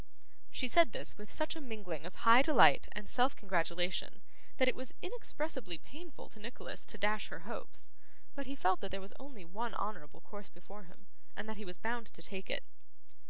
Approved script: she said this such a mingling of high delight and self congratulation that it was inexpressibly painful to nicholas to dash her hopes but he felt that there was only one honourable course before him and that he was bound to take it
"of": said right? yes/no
yes